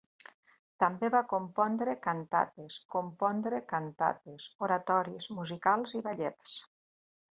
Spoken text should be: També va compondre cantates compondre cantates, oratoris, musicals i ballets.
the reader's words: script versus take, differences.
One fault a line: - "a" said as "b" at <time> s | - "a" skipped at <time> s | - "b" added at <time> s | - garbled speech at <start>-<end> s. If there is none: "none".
none